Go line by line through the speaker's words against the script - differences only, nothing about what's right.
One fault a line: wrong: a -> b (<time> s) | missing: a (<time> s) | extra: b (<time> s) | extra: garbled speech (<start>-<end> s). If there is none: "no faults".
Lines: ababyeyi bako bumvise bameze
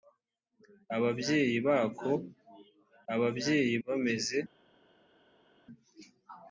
wrong: bumvise -> ababyeyi (3.1 s)